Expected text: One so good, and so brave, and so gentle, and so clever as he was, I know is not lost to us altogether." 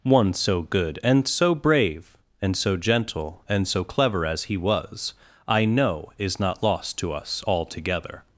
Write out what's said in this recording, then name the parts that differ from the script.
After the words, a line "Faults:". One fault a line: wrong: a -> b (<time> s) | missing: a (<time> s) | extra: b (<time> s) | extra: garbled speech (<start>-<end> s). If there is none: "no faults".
One so good, and so brave, and so gentle, and so clever as he was, I know is not lost to us altogether."
Faults:
no faults